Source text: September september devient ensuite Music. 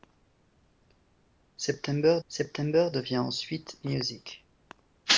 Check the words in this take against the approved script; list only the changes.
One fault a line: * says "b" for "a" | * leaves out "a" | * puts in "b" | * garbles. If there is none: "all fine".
all fine